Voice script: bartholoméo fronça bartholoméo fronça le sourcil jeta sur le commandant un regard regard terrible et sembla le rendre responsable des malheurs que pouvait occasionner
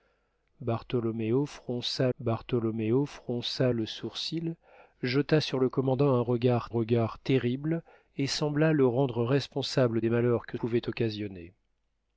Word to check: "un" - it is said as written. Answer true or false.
true